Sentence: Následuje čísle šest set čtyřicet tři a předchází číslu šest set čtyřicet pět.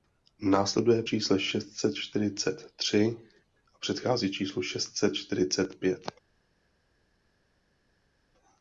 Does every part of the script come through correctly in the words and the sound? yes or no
yes